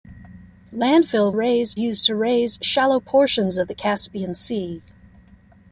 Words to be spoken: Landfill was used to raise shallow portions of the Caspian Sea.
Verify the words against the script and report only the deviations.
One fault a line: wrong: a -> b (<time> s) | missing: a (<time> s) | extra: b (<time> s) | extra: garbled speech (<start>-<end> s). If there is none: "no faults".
wrong: was -> raise (1.3 s)